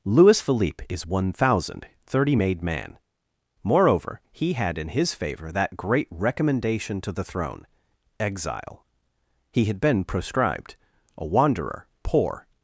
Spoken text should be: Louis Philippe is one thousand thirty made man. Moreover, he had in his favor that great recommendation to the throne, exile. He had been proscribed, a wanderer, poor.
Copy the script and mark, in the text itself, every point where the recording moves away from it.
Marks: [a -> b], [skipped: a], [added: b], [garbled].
Louis Philippe is one thousand thirty made man. Moreover, he had in his favor that great recommendation to the throne, exile. He had been proscribed, a wanderer, poor.